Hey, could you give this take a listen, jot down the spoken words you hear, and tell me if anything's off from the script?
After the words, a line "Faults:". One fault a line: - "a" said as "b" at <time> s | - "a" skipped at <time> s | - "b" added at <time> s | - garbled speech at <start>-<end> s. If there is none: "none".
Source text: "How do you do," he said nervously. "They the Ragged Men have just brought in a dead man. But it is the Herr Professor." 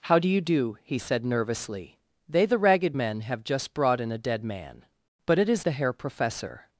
"How do you do," he said nervously. "They the Ragged Men have just brought in a dead man. But it is the Herr Professor."
Faults:
none